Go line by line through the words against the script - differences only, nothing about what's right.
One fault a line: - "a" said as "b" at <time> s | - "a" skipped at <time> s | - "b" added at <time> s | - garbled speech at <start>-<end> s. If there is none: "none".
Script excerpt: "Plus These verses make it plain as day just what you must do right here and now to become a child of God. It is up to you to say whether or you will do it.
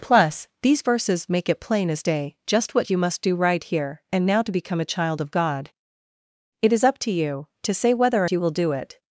none